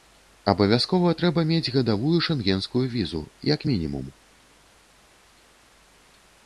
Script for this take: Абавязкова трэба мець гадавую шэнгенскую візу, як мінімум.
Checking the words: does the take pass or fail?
pass